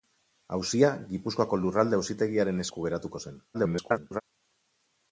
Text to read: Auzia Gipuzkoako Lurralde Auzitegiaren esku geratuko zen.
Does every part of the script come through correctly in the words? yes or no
no